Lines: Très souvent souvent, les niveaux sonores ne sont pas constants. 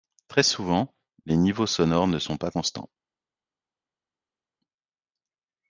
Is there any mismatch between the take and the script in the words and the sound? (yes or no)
yes